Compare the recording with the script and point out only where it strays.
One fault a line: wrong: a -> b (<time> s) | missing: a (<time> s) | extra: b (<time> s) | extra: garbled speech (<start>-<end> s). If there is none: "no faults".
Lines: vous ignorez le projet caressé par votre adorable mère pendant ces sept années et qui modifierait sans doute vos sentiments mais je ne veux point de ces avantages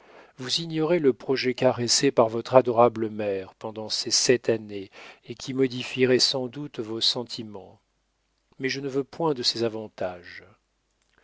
no faults